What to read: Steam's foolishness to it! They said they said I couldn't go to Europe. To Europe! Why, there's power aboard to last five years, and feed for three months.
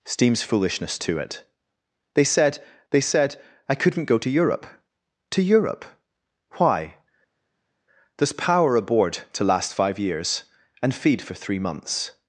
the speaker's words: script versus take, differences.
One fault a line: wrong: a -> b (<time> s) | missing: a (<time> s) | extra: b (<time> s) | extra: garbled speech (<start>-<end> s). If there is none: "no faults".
no faults